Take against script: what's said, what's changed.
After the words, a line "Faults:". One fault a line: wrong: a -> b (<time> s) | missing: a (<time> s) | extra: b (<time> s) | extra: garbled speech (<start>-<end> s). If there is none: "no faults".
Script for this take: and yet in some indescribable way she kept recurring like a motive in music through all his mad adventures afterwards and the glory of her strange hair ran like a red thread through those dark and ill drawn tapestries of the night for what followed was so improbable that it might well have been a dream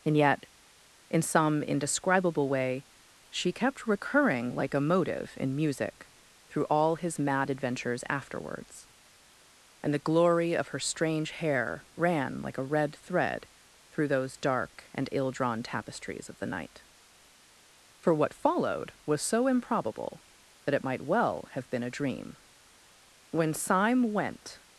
and yet in some indescribable way she kept recurring like a motive in music through all his mad adventures afterwards and the glory of her strange hair ran like a red thread through those dark and ill drawn tapestries of the night for what followed was so improbable that it might well have been a dream when syme went
Faults:
extra: when syme went (23.3 s)